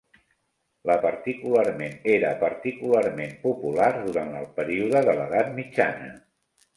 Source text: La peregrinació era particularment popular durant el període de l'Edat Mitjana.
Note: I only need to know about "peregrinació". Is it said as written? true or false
false